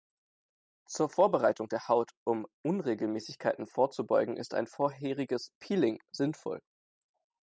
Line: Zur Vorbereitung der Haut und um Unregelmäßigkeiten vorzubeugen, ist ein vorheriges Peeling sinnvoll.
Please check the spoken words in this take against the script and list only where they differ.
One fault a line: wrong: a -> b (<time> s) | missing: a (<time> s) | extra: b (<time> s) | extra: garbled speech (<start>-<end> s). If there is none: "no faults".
missing: und (2.1 s)